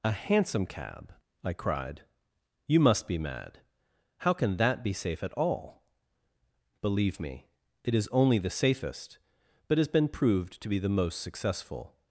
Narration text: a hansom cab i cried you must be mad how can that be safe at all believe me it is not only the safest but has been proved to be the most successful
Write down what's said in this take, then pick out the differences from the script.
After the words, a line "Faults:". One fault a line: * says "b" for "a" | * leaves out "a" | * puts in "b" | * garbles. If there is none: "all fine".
a hansom cab i cried you must be mad how can that be safe at all believe me it is only the safest but has been proved to be the most successful
Faults:
* leaves out "not"